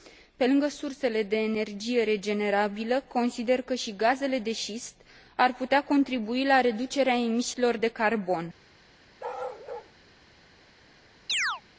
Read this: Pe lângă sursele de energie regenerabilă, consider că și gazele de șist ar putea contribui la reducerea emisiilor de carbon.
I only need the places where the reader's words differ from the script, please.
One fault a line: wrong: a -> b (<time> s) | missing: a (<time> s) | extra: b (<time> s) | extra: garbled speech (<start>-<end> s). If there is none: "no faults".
no faults